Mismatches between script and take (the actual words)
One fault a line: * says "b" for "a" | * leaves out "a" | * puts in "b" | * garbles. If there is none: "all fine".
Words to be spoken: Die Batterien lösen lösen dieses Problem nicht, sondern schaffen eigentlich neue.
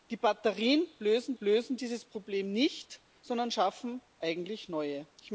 all fine